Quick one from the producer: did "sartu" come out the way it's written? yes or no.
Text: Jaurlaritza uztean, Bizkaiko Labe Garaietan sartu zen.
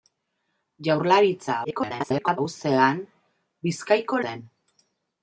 no